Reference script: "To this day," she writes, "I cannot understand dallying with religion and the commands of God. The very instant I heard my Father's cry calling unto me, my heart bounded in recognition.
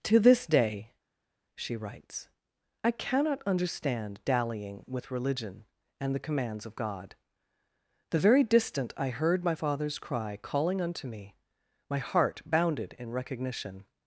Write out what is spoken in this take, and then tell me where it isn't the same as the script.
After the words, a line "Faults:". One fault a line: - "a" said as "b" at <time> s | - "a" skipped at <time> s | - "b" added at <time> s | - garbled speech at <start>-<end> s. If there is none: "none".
"To this day," she writes, "I cannot understand dallying with religion and the commands of God. The very distant I heard my Father's cry calling unto me, my heart bounded in recognition.
Faults:
- "instant" said as "distant" at 8.4 s